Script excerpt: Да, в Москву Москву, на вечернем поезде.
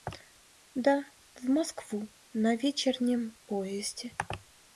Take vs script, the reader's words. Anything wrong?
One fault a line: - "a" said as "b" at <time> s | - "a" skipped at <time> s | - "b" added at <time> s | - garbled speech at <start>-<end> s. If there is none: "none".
- "Москву" skipped at 2.1 s